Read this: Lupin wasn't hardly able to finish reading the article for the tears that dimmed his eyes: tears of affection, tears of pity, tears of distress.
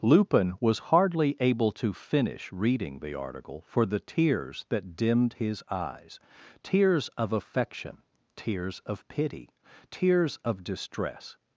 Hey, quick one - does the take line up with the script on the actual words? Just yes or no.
no